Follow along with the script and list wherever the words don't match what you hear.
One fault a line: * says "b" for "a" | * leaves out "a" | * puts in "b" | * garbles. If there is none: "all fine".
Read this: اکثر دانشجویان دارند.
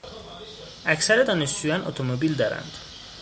* puts in "اتومبیل"